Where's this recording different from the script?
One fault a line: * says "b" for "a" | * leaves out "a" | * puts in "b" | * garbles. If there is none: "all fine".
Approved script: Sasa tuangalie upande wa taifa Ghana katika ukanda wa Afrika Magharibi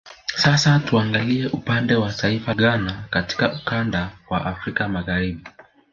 all fine